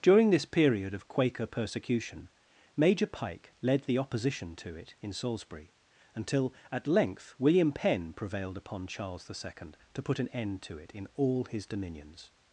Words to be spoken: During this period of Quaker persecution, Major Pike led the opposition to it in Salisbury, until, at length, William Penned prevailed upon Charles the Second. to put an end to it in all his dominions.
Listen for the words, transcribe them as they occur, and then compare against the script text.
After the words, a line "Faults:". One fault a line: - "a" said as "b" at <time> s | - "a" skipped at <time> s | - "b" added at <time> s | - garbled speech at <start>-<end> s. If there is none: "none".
During this period of Quaker persecution, Major Pike led the opposition to it in Salisbury, until, at length, William Penn prevailed upon Charles the Second. to put an end to it in all his dominions.
Faults:
- "Penned" said as "Penn" at 7.7 s